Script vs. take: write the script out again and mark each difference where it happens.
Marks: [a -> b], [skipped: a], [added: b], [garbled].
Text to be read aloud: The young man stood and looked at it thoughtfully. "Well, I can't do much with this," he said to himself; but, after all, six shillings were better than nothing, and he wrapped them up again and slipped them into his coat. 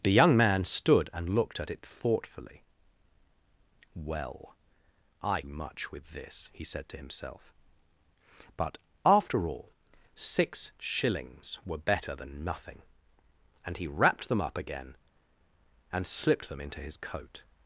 The young man stood and looked at it thoughtfully. "Well, I [skipped: can't do] much with this," he said to himself; but, after all, six shillings were better than nothing, and he wrapped them up again and slipped them into his coat.